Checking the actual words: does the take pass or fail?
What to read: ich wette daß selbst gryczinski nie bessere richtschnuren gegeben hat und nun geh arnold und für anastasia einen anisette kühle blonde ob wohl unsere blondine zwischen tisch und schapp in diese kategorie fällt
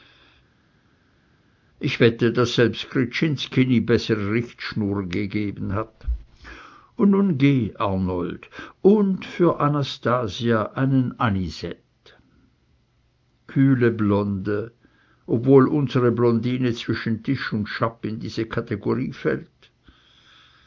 pass